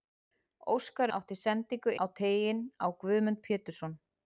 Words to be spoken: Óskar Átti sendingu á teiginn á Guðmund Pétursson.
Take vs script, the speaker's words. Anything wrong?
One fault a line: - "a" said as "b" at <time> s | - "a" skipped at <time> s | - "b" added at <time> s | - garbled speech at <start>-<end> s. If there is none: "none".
none